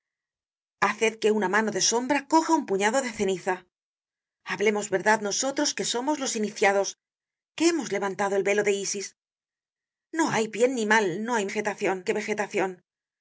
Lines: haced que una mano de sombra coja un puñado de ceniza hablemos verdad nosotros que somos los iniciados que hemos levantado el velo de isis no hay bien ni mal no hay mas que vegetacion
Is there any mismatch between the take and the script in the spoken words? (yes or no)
yes